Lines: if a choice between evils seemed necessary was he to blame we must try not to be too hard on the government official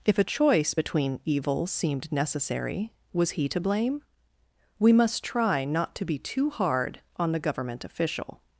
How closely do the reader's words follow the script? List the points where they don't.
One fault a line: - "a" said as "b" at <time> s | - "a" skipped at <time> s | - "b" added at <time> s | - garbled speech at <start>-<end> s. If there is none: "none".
none